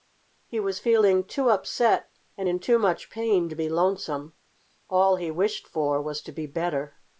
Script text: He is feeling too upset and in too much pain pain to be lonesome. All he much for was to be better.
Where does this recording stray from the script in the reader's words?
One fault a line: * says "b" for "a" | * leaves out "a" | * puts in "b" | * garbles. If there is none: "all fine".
* says "was" for "is"
* leaves out "pain"
* says "wished" for "much"